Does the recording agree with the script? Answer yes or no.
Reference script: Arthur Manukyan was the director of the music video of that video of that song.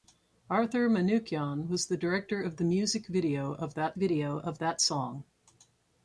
yes